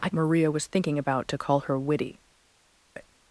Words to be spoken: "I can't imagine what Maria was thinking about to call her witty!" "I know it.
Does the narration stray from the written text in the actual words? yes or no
yes